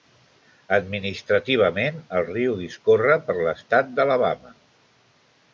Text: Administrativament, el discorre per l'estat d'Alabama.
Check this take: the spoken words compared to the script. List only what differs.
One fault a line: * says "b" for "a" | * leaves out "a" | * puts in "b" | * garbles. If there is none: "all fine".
* puts in "riu"